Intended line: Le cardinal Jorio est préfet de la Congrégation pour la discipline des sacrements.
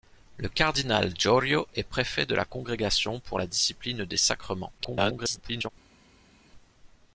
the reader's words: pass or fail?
fail